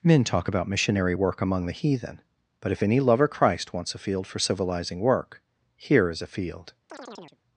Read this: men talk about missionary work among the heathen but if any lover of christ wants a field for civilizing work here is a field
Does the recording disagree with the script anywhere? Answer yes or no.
yes